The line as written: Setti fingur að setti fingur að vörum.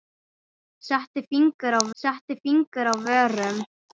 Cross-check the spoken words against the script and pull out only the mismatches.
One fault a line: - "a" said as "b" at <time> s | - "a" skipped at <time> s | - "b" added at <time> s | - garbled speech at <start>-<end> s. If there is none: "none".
none